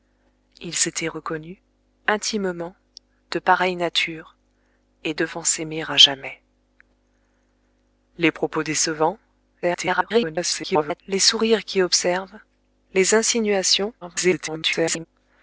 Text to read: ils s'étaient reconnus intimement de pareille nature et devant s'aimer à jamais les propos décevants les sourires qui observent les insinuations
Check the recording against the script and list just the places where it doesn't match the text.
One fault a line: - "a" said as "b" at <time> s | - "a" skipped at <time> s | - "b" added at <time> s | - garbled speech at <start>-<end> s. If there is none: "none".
- garbled speech at 9.6-11.0 s
- garbled speech at 14.0-15.1 s